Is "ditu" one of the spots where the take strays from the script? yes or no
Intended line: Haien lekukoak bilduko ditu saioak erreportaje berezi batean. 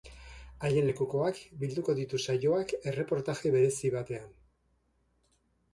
no